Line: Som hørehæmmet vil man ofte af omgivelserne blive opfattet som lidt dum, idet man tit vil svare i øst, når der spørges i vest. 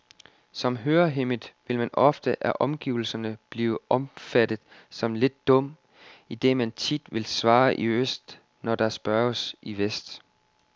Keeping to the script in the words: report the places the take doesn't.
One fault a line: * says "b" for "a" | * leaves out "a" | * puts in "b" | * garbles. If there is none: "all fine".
all fine